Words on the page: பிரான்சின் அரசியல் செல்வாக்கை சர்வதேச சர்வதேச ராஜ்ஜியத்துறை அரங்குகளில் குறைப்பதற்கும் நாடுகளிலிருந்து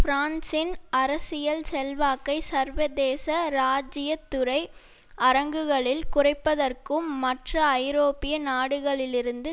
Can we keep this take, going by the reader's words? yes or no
no